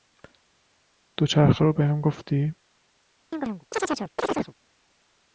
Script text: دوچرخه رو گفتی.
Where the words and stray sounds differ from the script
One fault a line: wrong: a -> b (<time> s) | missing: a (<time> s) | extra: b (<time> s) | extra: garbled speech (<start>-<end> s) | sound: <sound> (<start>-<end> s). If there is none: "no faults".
extra: بهم (1.7 s)
sound: chirp (3.3-4.5 s)